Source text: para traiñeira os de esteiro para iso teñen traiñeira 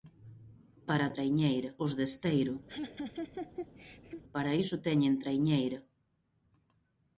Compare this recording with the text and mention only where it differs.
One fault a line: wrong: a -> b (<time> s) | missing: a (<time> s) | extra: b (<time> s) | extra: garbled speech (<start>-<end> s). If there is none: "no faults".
no faults